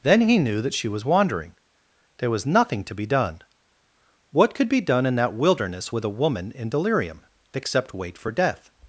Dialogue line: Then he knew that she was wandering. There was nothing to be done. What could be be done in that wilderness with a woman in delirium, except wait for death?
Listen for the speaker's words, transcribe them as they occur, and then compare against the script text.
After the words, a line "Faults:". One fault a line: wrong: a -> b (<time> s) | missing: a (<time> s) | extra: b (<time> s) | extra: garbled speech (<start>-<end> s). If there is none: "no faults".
Then he knew that she was wandering. There was nothing to be done. What could be done in that wilderness with a woman in delirium, except wait for death?
Faults:
missing: be (4.8 s)